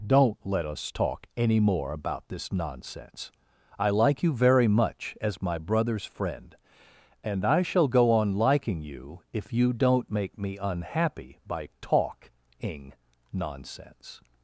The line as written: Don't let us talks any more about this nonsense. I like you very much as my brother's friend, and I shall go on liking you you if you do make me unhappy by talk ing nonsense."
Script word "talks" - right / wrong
wrong